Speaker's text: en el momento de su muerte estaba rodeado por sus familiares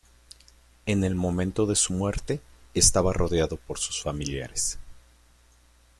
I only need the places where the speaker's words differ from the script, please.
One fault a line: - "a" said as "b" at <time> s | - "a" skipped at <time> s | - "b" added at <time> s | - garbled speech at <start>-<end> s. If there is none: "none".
none